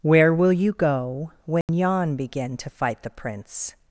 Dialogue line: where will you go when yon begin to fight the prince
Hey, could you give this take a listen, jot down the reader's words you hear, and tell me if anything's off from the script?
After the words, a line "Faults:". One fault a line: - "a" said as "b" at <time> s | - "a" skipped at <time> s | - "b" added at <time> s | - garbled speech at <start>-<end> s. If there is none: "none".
where will you go when yon begin to fight the prince
Faults:
none